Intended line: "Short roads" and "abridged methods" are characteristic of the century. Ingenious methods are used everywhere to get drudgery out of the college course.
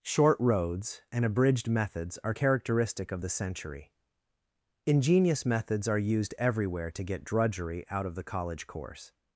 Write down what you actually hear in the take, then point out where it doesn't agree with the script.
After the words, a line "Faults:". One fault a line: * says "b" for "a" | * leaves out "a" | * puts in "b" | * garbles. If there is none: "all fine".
"Short roads" and "abridged methods" are characteristic of the century. Ingenious methods are used everywhere to get drudgery out of the college course.
Faults:
all fine